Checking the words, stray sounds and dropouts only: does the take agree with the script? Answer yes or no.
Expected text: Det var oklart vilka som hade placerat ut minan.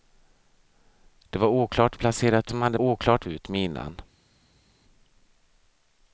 no